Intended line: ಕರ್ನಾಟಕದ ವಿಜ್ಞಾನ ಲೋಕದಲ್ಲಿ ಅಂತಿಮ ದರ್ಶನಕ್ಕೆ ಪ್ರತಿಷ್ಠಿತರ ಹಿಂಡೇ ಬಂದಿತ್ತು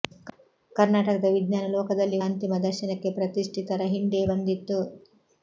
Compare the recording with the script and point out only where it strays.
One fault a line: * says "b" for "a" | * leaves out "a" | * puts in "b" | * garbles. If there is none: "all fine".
all fine